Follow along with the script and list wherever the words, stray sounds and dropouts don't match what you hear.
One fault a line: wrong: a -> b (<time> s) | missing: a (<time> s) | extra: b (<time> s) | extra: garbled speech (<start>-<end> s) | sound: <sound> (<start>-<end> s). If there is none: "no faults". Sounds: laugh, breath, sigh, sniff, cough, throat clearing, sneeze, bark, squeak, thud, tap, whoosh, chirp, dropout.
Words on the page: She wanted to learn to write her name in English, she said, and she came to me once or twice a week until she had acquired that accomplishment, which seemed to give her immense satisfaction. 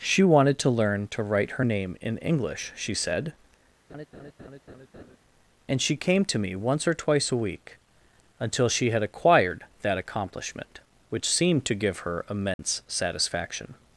sound: laugh (3.9-5.2 s)
sound: dropout (12.5-12.6 s)